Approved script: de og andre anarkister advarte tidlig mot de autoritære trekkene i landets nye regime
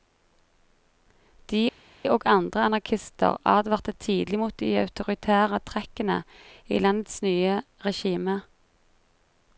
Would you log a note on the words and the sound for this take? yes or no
no